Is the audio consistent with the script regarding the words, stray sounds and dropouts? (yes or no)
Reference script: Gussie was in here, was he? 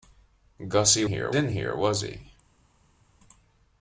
no